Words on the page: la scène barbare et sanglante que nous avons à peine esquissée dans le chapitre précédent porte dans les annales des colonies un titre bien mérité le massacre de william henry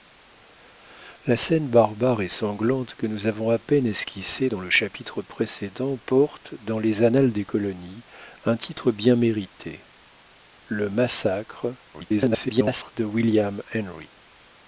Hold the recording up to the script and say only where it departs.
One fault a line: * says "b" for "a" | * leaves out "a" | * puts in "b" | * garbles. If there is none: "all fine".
* garbles